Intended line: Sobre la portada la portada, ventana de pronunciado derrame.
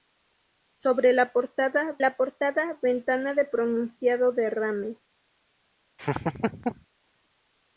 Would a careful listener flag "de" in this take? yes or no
no